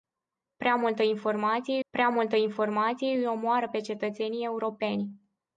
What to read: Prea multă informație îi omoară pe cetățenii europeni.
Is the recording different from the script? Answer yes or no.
yes